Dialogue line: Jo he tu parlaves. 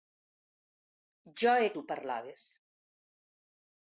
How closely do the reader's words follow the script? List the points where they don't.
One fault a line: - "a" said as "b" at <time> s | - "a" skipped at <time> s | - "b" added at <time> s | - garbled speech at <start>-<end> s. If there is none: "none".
none